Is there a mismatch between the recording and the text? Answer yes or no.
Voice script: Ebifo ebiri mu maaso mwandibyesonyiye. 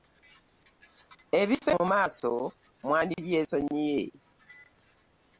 yes